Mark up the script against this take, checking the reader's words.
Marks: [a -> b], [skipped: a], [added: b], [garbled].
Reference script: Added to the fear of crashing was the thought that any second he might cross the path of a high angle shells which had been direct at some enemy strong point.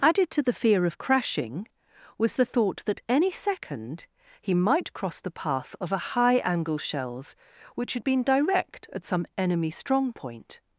Added to the fear of crashing was the thought that any second he might cross the path of a high angle shells which had been direct at some enemy strong point.